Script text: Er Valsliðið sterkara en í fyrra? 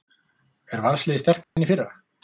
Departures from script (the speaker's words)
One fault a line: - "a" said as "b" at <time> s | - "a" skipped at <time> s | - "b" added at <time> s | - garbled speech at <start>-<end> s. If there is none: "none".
none